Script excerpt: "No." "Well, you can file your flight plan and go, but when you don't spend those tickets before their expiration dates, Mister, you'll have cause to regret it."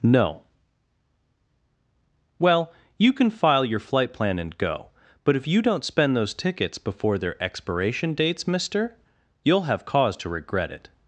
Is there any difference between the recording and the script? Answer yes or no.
yes